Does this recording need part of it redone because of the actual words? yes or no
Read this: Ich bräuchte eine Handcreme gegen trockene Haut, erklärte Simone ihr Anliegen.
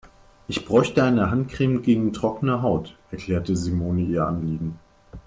no